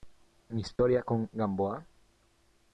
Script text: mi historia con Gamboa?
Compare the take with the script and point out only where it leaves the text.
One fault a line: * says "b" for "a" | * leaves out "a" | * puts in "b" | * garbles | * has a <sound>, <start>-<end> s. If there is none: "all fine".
* has a dropout, 0.8-0.8 s